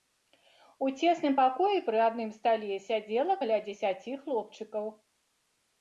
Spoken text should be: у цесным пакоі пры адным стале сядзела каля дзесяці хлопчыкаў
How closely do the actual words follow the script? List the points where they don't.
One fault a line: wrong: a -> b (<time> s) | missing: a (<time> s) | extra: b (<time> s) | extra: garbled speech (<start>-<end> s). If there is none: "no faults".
no faults